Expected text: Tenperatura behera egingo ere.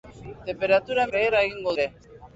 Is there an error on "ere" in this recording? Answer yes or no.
no